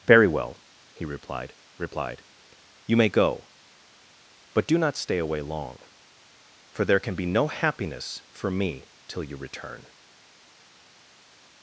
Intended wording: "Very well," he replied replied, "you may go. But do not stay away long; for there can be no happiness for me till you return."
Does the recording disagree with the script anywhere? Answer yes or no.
no